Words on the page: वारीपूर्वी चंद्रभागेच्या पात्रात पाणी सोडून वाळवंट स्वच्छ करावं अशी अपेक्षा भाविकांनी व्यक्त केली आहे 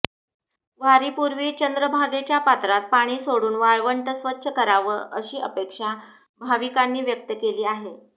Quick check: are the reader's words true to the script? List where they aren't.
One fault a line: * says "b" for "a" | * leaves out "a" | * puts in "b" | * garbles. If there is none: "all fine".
all fine